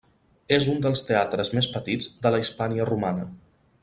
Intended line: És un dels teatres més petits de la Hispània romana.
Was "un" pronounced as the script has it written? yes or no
yes